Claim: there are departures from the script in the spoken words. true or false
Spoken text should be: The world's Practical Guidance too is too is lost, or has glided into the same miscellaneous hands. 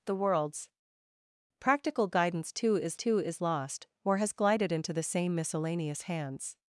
false